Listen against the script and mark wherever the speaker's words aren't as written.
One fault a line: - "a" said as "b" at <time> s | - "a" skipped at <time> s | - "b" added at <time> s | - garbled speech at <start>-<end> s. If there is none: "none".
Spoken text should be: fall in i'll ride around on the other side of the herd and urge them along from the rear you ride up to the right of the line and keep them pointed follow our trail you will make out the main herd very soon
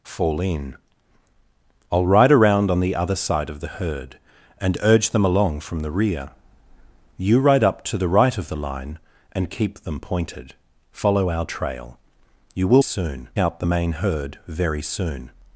- "make" said as "soon" at 12.8 s